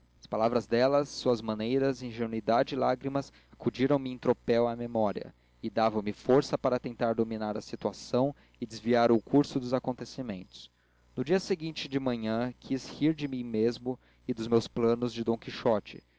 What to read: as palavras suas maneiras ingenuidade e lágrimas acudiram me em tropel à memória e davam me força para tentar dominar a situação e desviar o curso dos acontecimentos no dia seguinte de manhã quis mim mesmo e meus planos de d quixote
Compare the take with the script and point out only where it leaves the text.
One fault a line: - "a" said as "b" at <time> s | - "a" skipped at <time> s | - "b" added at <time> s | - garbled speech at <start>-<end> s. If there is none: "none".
- "dela" added at 0.7 s
- "rir de" added at 12.9 s
- "dos" added at 14.3 s